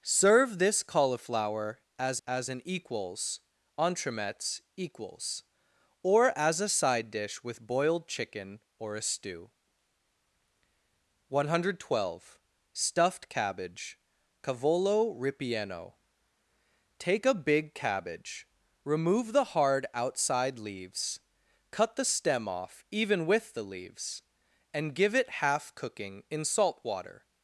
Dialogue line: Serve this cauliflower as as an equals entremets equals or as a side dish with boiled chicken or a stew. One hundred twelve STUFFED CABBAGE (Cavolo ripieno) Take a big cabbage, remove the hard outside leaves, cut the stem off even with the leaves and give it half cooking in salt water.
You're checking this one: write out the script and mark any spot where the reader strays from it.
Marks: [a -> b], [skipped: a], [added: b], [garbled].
Serve this cauliflower as as an equals entremets equals or as a side dish with boiled chicken or a stew. One hundred twelve STUFFED CABBAGE (Cavolo ripieno) Take a big cabbage, remove the hard outside leaves, cut the stem off even with the leaves and give it half cooking in salt water.